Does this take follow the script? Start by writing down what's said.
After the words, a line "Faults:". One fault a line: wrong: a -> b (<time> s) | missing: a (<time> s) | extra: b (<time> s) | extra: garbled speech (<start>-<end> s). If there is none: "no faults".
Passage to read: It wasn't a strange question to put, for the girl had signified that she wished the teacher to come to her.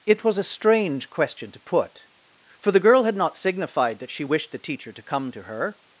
It was a strange question to put, for the girl had not signified that she wished the teacher to come to her.
Faults:
wrong: wasn't -> was (0.2 s)
extra: not (3.2 s)